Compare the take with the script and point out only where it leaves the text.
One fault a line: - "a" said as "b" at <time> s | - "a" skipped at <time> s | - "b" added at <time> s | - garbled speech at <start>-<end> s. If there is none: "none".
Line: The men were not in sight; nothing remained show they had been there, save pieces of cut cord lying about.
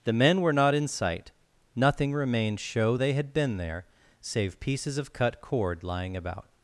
none